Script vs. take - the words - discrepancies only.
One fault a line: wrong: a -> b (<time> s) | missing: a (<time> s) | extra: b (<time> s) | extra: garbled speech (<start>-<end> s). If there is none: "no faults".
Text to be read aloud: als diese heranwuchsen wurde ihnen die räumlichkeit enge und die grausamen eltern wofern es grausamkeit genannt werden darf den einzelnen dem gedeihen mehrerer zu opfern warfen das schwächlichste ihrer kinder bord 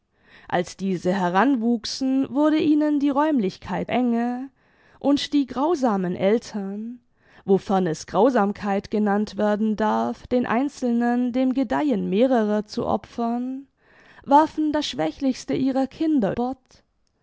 no faults